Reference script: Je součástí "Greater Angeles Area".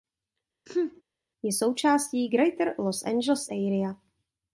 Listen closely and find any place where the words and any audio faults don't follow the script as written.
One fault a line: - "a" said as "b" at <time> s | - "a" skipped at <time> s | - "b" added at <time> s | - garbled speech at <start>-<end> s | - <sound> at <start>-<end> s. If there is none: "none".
- sneeze at 0.7-1.0 s
- "Los" added at 2.8 s